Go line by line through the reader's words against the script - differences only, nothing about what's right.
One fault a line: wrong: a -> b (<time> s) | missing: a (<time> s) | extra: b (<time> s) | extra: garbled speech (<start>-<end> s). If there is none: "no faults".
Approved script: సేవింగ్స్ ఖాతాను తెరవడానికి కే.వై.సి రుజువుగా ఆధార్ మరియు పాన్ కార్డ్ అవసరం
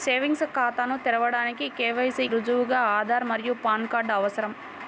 no faults